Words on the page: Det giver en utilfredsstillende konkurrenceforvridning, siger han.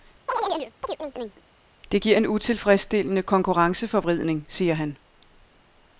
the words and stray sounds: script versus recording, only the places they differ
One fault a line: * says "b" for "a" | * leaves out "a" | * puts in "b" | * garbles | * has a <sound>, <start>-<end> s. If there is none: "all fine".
* has a chirp, 0.3-1.4 s